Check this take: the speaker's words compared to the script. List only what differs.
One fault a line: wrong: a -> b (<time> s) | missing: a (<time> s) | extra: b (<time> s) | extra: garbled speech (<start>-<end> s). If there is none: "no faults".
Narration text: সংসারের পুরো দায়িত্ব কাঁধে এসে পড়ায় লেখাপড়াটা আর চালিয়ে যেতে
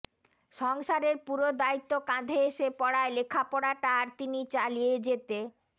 extra: তিনি (4.2 s)